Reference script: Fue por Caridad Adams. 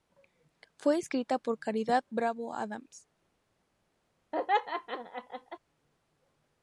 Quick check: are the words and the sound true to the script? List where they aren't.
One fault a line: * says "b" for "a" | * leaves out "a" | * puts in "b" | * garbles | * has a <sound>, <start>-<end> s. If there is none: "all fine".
* puts in "escrita"
* puts in "Bravo"
* has a laugh, 4.3-5.6 s